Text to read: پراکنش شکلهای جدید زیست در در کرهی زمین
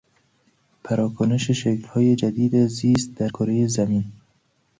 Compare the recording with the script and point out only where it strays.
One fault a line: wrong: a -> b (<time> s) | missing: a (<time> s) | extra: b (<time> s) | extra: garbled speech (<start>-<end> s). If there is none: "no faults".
missing: در (3.3 s)